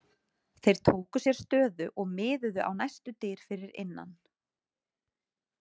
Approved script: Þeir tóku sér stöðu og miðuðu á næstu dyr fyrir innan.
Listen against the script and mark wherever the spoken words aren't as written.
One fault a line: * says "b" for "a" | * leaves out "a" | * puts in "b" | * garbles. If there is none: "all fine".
all fine